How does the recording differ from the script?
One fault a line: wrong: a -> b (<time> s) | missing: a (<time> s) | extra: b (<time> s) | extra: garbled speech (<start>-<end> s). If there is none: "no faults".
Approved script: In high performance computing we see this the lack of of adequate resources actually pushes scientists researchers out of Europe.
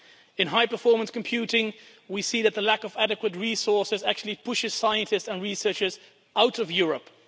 wrong: this -> that (2.4 s)
missing: of (3.0 s)
extra: and (5.3 s)